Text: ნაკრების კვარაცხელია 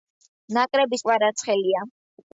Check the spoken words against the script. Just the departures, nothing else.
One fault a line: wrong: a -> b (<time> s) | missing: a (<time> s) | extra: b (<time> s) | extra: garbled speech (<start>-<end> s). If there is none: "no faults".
no faults